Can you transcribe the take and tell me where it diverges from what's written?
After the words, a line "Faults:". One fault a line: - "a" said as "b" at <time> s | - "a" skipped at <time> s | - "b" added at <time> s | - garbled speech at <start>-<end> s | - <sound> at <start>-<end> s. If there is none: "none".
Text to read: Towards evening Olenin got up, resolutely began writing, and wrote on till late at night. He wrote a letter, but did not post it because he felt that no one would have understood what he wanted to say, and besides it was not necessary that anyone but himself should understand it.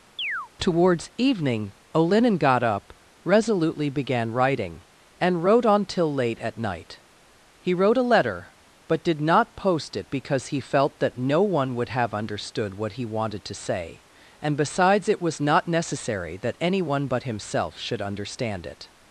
Towards evening Olenin got up, resolutely began writing, and wrote on till late at night. He wrote a letter, but did not post it because he felt that no one would have understood what he wanted to say, and besides it was not necessary that anyone but himself should understand it.
Faults:
- chirp at 0.2-0.5 s